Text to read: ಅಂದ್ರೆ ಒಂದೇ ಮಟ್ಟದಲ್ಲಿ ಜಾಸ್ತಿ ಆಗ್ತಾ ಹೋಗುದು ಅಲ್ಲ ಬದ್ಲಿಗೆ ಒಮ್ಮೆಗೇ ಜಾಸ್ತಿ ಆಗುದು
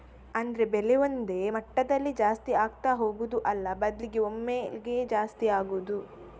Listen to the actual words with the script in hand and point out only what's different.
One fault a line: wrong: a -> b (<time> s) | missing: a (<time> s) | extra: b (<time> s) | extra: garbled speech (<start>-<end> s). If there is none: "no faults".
extra: ಬೆಲೆ (0.7 s)